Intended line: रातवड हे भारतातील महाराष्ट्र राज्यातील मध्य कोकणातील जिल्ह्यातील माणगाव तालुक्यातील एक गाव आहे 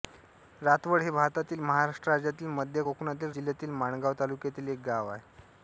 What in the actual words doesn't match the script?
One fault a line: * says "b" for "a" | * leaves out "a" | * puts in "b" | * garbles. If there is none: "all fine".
all fine